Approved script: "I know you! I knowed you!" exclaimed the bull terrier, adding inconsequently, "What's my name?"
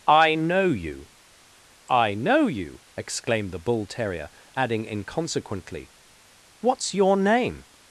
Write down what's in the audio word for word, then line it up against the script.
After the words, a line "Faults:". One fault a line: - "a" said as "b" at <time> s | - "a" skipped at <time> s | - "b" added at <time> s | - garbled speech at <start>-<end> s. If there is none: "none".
"I know you! I know you!" exclaimed the bull terrier, adding inconsequently, "What's your name?"
Faults:
- "knowed" said as "know" at 2.1 s
- "my" said as "your" at 6.9 s